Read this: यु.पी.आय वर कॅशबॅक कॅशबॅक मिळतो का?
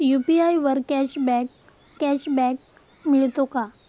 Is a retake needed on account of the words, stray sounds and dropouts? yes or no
no